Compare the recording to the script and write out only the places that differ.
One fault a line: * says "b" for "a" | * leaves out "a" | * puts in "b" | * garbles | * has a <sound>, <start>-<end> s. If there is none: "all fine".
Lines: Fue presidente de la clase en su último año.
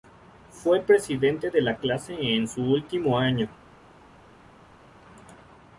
all fine